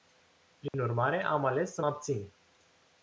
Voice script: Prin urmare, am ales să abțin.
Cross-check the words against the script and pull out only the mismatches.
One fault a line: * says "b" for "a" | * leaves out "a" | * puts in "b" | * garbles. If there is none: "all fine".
all fine